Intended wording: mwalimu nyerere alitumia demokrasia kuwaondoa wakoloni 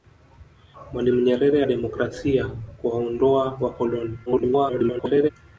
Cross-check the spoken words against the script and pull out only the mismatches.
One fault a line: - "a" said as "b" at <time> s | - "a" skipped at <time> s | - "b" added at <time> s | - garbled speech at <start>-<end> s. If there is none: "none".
- "alitumia" skipped at 1.6 s
- garbled speech at 4.3-5.3 s